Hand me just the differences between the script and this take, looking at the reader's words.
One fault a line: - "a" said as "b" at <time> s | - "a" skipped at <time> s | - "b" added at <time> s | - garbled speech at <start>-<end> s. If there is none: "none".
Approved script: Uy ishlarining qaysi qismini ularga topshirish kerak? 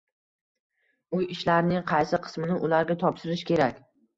none